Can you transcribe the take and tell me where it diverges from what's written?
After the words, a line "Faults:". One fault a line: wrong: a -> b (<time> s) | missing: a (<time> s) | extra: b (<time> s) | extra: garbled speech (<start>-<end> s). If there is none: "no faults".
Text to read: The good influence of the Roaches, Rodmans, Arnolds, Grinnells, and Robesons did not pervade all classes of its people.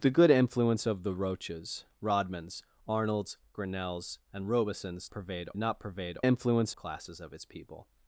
The good influence of the Roaches, Rodmans, Arnolds, Grinnells, and Robesons pervade not pervade influence classes of its people.
Faults:
wrong: did -> pervade (5.1 s)
wrong: all -> influence (6.2 s)